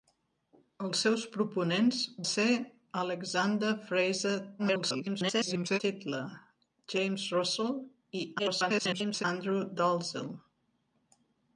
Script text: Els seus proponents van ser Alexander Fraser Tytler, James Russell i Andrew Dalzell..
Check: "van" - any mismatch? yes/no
yes